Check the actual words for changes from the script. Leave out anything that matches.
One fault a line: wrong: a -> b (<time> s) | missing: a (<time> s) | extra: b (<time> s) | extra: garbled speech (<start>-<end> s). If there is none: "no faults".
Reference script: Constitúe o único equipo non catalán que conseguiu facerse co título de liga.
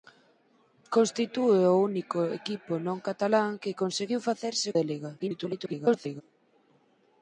missing: co título (4.7 s)
extra: garbled speech (5.2-6.2 s)